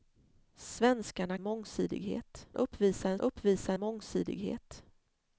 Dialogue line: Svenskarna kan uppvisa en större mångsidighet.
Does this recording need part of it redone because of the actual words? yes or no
yes